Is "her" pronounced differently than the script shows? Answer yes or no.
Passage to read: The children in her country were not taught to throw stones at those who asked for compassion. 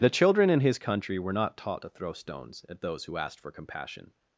yes